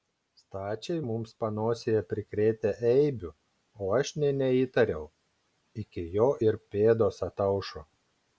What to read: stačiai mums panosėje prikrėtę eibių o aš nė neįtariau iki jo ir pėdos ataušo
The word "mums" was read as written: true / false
true